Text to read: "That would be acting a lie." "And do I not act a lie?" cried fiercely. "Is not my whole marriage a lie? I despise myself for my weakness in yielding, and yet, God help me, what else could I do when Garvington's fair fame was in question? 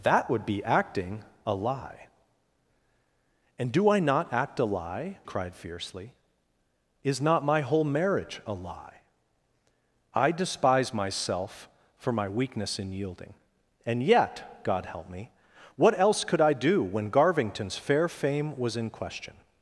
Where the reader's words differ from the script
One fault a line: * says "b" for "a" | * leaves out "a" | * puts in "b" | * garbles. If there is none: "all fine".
all fine